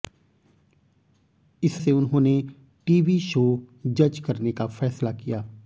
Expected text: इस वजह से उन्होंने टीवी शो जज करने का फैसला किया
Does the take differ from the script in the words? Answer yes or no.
yes